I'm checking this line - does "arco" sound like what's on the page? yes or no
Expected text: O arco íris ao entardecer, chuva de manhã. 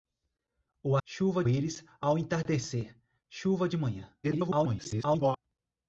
no